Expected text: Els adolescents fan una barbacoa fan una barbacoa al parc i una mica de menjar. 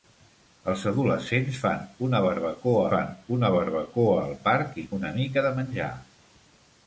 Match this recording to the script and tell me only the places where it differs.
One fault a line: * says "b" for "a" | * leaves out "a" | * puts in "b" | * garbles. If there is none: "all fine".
all fine